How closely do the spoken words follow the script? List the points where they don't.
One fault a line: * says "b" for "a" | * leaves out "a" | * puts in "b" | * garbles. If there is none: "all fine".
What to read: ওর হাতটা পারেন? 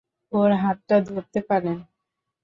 * puts in "ধরতে"